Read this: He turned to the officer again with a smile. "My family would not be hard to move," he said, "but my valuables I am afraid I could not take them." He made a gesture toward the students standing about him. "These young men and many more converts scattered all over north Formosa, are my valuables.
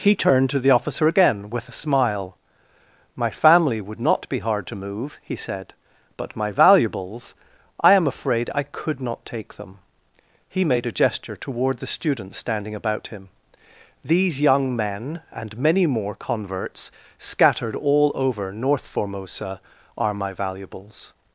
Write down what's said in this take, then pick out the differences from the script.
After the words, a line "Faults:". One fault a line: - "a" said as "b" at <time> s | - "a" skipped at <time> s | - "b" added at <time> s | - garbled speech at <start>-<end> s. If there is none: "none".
He turned to the officer again with a smile. "My family would not be hard to move," he said, "but my valuables I am afraid I could not take them." He made a gesture toward the students standing about him. "These young men and many more converts scattered all over north Formosa, are my valuables.
Faults:
none